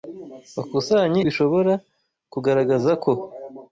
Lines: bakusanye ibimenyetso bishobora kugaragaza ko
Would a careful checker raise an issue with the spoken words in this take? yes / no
yes